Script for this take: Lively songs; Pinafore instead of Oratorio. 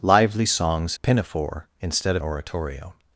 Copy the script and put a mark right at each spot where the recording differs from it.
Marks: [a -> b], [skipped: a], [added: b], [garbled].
Lively songs; Pinafore instead of Oratorio.